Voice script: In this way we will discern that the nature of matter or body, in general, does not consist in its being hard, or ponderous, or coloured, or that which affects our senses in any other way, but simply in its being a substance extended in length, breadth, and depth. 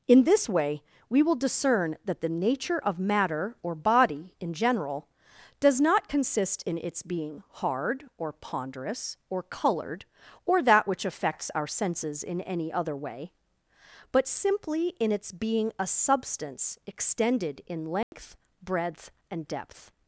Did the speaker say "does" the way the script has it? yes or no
yes